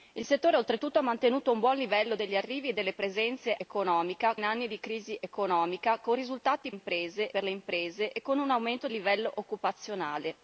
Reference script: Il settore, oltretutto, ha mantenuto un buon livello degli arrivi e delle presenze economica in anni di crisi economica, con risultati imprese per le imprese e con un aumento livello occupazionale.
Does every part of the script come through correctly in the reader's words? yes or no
yes